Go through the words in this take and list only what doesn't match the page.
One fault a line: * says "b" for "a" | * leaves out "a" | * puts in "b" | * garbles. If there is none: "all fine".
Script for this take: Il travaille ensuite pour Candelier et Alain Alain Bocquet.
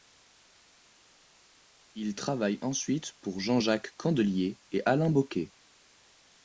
* puts in "Jean Jacques"
* leaves out "Alain"